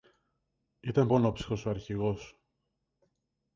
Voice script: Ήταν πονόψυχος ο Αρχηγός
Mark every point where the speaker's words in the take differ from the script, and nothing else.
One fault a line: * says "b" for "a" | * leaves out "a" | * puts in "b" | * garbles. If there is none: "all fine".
all fine